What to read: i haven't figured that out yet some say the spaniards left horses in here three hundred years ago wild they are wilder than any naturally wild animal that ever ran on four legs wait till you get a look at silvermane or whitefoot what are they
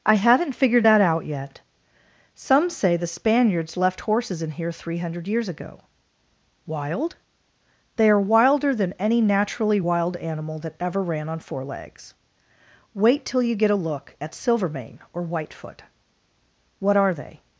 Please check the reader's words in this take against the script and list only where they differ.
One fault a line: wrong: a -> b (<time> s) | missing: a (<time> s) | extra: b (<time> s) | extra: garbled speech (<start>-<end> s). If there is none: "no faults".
no faults